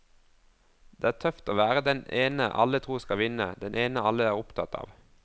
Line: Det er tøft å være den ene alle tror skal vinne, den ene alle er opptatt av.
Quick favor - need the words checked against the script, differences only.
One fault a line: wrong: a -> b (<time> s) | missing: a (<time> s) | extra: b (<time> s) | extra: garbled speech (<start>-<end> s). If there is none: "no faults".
no faults